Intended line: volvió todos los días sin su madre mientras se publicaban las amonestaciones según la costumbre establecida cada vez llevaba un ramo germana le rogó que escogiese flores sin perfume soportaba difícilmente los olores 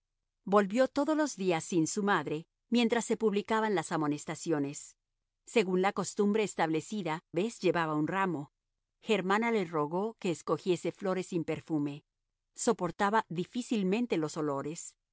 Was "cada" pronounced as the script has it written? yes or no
no